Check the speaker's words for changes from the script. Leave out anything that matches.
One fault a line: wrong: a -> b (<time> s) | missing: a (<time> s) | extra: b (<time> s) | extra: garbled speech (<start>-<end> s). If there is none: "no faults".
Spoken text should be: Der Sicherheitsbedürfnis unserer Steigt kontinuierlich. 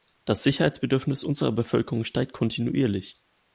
wrong: Der -> Das (0.2 s)
extra: Bevölkerung (1.5 s)